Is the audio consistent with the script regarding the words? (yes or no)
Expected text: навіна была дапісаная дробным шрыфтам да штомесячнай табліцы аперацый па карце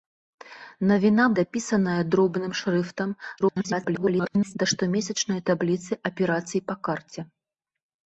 no